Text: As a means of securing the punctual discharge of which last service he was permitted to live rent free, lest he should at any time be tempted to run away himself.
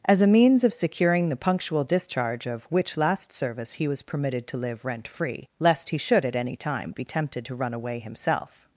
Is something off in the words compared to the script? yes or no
no